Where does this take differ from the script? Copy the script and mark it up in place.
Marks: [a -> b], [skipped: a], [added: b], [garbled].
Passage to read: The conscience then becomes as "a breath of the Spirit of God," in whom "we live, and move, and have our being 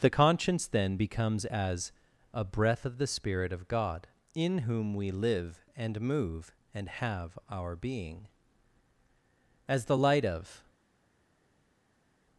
The conscience then becomes as "a breath of the Spirit of God," in whom "we live, and move, and have our being [added: As the light of]